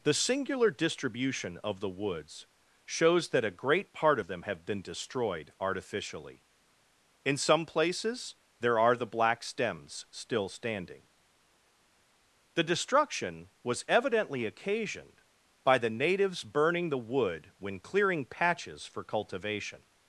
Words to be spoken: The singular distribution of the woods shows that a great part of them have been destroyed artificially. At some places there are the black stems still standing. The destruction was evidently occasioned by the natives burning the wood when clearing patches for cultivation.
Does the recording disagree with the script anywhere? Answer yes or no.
yes